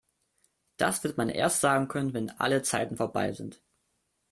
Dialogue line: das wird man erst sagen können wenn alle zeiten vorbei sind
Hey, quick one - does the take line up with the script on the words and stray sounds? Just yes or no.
yes